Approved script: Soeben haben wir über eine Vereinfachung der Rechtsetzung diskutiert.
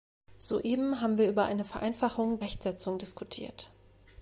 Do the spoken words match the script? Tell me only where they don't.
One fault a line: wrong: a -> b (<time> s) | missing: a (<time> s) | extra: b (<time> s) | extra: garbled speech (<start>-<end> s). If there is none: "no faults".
missing: der (2.4 s)